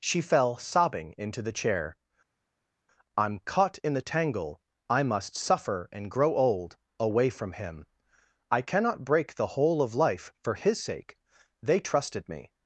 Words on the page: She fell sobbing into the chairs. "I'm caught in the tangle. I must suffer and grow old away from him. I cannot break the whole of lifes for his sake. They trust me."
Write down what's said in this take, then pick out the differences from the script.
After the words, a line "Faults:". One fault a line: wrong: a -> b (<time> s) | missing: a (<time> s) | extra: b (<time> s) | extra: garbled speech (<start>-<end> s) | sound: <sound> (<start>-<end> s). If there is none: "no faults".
She fell sobbing into the chair. "I'm caught in the tangle. I must suffer and grow old away from him. I cannot break the whole of life for his sake. They trusted me."
Faults:
wrong: chairs -> chair (1.5 s)
wrong: lifes -> life (9.9 s)
wrong: trust -> trusted (11.8 s)